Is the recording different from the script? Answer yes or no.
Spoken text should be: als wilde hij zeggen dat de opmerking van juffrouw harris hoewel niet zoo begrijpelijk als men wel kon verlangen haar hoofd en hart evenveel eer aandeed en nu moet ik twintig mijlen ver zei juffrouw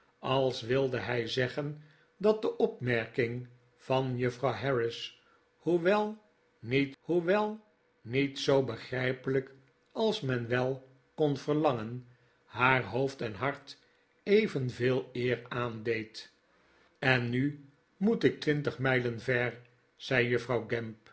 yes